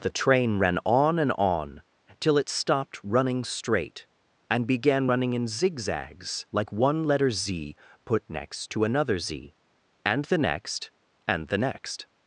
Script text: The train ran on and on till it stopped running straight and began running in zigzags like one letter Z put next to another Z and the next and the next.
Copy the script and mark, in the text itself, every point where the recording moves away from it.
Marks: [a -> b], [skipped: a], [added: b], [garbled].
The train ran on and on till it stopped running straight and began running in zigzags like one letter Z put next to another Z and the next and the next.